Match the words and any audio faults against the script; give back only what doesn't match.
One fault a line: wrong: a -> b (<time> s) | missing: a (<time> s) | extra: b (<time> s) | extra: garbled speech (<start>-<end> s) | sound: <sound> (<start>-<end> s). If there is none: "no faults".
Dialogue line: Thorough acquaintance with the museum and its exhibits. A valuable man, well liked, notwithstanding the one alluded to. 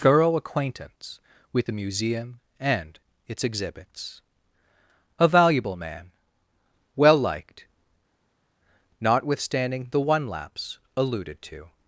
extra: lapse (10.3 s)